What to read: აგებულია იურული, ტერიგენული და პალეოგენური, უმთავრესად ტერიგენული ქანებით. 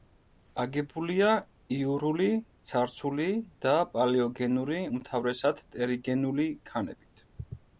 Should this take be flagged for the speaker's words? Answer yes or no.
yes